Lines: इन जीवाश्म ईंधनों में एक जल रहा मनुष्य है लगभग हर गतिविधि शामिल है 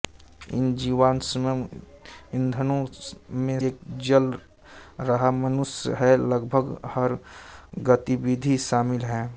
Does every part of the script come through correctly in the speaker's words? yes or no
yes